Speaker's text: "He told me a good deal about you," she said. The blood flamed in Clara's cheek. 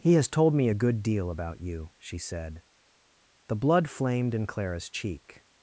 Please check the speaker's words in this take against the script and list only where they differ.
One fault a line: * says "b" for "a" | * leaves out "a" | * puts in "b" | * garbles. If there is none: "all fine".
* puts in "has"